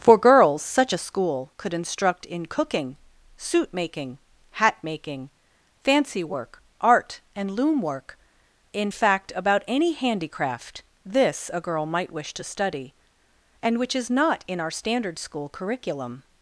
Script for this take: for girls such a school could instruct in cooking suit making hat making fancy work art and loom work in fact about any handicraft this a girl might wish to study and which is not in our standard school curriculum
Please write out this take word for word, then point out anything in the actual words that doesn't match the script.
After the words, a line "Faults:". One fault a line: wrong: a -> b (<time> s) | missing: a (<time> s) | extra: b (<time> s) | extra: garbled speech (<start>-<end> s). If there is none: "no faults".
for girls such a school could instruct in cooking suit making hat making fancy work art and loom work in fact about any handicraft this a girl might wish to study and which is not in our standard school curriculum
Faults:
no faults